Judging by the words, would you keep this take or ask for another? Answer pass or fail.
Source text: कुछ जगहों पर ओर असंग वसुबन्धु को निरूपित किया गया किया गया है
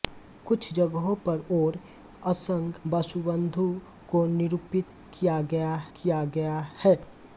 pass